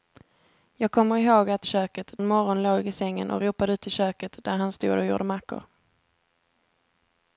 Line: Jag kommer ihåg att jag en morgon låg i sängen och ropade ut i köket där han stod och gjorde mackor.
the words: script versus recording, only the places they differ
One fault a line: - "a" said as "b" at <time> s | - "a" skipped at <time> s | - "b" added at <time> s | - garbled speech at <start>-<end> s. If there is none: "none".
- "jag" said as "köket" at 1.6 s